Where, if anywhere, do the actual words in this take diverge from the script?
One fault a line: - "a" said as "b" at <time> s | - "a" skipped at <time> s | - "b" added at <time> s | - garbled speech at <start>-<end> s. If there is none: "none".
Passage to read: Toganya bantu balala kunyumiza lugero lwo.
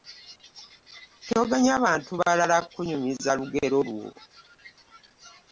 none